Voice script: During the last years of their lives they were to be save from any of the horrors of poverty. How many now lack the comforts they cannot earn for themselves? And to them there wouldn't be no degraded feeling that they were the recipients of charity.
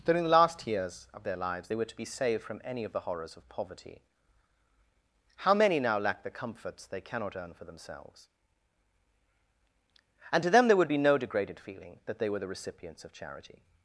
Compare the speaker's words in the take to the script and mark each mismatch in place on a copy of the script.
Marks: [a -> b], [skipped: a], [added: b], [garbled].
During the last years of their lives they were to be [save -> saved] from any of the horrors of poverty. How many now lack the comforts they cannot earn for themselves? And to them there [wouldn't -> would] be no degraded feeling that they were the recipients of charity.